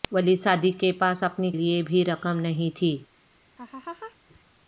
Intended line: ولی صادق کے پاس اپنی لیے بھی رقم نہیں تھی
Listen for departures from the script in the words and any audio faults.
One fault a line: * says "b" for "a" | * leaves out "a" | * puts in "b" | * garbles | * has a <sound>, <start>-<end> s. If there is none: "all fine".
* has a laugh, 3.6-4.2 s